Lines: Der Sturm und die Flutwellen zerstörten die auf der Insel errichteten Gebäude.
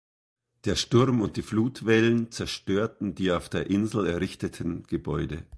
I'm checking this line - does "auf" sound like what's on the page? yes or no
yes